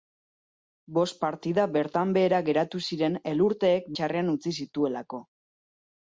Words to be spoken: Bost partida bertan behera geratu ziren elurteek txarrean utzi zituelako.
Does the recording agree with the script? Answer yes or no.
yes